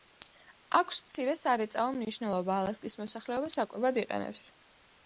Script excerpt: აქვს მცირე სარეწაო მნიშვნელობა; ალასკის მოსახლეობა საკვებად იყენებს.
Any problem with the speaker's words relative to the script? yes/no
no